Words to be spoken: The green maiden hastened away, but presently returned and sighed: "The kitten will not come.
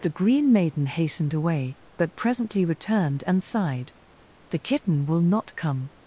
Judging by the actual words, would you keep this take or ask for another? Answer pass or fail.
pass